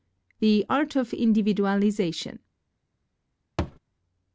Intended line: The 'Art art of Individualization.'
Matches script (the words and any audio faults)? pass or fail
fail